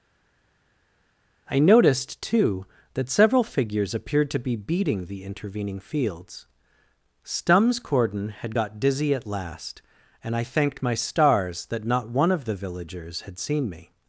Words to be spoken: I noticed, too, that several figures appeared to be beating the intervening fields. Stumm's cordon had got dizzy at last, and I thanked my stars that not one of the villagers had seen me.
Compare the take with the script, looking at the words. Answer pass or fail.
pass